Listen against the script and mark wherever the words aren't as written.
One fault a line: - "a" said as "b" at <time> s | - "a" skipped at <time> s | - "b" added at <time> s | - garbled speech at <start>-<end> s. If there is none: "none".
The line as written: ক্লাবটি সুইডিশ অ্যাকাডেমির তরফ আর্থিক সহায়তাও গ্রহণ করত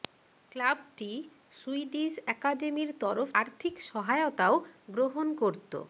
none